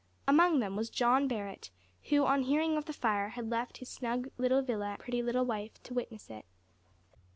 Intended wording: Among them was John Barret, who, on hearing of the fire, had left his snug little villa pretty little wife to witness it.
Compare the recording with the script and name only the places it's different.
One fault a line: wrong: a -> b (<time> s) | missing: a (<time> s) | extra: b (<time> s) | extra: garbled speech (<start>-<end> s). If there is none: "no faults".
no faults